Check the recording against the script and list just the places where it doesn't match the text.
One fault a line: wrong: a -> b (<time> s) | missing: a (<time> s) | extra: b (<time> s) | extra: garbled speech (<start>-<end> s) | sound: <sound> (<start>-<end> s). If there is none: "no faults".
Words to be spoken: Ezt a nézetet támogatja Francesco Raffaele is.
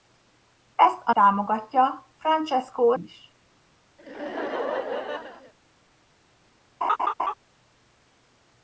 missing: nézetet (1.1 s)
missing: Raffaele (2.9 s)
sound: laugh (4.0-5.5 s)
sound: laugh (6.8-7.3 s)